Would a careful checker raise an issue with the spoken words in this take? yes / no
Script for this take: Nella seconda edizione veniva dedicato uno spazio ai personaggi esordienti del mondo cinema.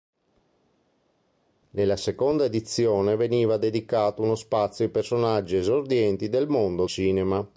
no